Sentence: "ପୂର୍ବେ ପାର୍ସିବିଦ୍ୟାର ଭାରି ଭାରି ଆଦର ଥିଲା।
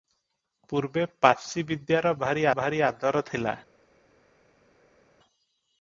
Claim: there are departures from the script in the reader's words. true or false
false